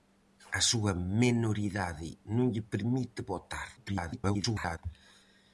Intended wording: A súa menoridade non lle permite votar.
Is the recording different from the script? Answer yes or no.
yes